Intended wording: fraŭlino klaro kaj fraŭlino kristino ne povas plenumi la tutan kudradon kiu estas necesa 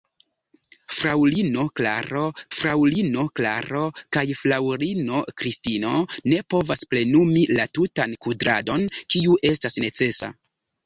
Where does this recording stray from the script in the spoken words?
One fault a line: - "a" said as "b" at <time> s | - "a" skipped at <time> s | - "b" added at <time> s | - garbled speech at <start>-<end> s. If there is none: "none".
- "fraŭlino klaro" added at 2.6 s